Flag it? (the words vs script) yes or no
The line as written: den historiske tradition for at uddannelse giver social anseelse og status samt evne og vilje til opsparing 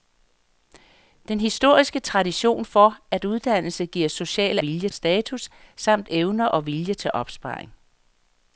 yes